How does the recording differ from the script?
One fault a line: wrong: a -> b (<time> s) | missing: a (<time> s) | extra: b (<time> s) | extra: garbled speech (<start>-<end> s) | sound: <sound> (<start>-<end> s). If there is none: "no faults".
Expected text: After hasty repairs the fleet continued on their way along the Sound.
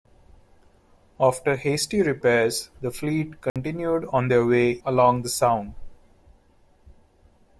sound: dropout (3.5-3.6 s)